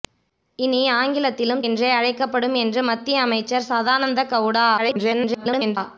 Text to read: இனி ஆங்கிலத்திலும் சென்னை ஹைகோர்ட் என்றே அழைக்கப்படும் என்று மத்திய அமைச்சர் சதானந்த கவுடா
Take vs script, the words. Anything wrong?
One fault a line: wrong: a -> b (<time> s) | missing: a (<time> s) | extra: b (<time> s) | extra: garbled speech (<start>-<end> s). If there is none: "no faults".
missing: சென்னை ஹைகோர்ட் (1.6 s)
extra: garbled speech (4.8-5.8 s)